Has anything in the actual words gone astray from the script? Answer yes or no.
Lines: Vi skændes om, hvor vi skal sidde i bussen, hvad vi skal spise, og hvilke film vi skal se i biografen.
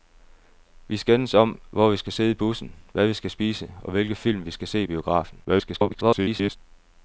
yes